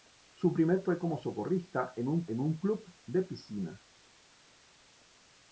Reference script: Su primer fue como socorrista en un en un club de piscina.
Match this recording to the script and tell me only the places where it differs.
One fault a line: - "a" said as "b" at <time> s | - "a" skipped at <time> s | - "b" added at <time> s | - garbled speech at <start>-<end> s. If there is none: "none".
none